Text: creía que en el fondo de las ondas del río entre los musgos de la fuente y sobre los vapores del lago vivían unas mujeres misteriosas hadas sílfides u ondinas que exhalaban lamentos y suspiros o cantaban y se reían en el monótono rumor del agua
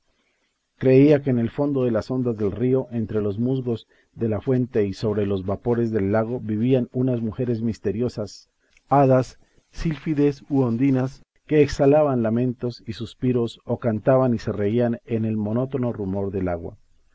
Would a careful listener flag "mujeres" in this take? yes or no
no